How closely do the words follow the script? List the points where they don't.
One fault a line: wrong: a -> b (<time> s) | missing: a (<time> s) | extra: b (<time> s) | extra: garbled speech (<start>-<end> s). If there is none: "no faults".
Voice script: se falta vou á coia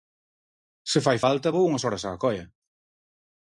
extra: fai (1.1 s)
extra: unhas horas (1.7 s)